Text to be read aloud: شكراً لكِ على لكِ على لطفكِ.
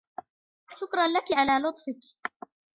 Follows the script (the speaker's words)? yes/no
no